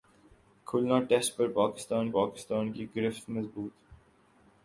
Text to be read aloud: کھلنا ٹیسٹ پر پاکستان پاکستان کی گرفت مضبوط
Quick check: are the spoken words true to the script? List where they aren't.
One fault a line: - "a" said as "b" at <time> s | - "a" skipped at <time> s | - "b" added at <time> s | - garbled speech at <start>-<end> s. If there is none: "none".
none